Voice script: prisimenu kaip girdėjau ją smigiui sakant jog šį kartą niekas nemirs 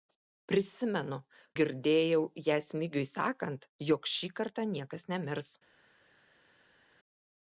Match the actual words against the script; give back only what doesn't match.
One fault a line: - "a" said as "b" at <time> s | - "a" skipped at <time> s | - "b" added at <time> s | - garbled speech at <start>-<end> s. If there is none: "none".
- "kaip" skipped at 1.2 s